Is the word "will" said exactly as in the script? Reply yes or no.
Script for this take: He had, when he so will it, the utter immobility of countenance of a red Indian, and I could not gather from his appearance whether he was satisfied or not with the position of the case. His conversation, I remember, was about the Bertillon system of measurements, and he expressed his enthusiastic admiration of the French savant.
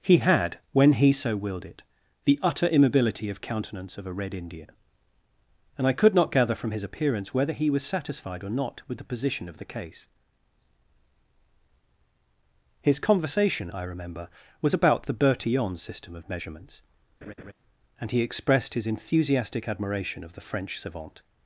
no